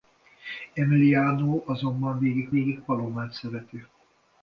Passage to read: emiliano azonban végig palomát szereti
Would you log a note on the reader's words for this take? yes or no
yes